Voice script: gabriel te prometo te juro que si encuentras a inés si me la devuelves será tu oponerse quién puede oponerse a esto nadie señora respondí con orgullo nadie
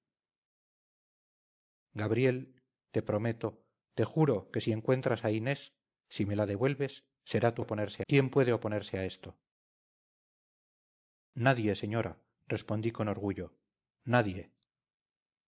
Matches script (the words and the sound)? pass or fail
pass